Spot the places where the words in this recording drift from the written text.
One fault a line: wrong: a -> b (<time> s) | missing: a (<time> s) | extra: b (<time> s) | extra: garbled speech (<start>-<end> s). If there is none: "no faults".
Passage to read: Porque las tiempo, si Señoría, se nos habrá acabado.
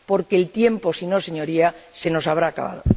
wrong: las -> el (0.3 s)
extra: no (1.1 s)